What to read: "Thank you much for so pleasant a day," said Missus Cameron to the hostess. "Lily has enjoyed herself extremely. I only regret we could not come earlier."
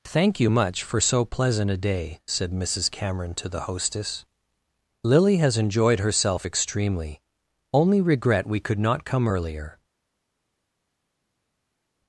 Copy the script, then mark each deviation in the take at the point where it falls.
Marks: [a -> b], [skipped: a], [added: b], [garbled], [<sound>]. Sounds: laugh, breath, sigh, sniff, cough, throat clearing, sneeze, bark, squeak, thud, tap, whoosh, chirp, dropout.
"Thank you much for so pleasant a day," said Missus Cameron to the hostess. "Lily has enjoyed herself extremely. [skipped: I] only regret we could not come earlier."